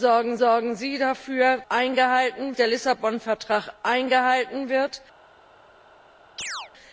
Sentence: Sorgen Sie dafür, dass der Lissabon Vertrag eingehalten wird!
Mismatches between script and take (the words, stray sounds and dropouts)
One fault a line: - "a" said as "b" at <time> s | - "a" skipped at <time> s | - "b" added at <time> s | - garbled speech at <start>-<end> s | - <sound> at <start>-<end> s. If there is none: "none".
- "sorgen" added at 0.4 s
- "dass" said as "eingehalten" at 1.7 s
- chirp at 6.4-6.7 s